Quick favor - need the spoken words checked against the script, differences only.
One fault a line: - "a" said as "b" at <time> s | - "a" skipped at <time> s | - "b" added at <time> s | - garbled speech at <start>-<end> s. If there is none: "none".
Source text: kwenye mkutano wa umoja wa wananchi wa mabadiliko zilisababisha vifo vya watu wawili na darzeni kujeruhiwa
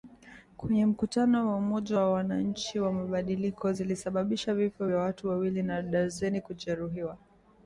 none